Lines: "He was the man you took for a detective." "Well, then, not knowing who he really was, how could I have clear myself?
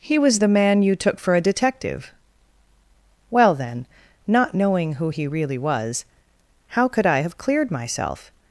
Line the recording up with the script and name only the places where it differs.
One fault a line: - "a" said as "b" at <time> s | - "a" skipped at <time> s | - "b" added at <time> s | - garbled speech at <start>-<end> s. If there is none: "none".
- "clear" said as "cleared" at 7.4 s